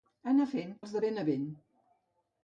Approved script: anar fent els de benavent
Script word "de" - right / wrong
right